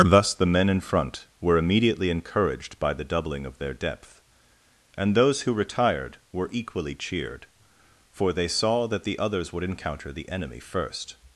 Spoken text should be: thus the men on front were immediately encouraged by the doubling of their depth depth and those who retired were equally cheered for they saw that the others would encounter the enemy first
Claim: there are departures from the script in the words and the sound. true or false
true